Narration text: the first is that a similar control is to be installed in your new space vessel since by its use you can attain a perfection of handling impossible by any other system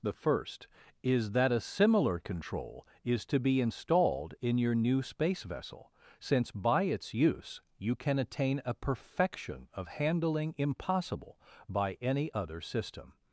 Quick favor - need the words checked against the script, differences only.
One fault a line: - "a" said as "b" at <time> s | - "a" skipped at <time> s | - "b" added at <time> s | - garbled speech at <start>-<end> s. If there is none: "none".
none